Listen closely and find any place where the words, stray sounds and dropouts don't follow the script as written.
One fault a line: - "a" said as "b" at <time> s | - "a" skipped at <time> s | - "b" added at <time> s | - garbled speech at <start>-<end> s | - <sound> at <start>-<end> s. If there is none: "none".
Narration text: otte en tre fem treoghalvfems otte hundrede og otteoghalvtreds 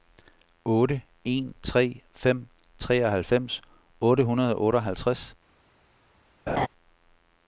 - laugh at 6.5-6.7 s